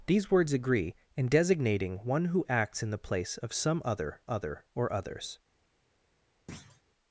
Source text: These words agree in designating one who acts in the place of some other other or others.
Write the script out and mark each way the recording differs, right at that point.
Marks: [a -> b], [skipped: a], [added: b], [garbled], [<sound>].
These words agree in designating one who acts in the place of some other other or others. [thud]